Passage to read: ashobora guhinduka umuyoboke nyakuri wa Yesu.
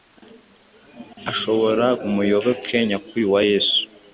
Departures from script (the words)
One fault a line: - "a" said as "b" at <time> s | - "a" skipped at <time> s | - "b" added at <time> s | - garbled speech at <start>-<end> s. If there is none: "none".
- "guhinduka" skipped at 1.9 s